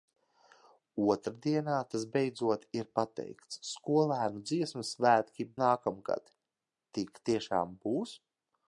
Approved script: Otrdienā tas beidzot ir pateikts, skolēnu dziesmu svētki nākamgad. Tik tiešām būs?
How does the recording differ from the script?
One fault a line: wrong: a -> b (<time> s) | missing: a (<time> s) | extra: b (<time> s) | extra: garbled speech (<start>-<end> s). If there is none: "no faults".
no faults